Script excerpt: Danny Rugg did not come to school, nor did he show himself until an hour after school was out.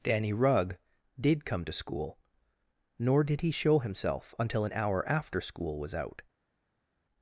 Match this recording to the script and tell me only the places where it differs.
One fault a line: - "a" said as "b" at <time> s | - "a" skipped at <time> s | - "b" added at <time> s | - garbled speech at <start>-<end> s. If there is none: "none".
- "not" skipped at 1.4 s